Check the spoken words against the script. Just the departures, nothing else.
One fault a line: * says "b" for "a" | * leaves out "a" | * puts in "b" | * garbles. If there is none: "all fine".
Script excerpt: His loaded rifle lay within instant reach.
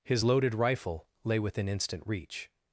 all fine